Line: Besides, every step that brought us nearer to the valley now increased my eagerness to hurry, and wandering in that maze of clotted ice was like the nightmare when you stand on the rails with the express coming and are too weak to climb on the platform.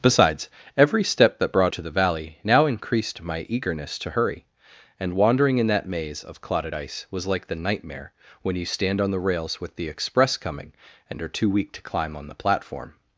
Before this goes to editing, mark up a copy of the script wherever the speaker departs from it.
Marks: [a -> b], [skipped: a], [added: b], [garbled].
Besides, every step that brought [skipped: us nearer] to the valley now increased my eagerness to hurry, and wandering in that maze of clotted ice was like the nightmare when you stand on the rails with the express coming and are too weak to climb on the platform.